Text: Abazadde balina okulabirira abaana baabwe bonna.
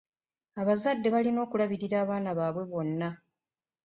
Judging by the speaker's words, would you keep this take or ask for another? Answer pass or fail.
pass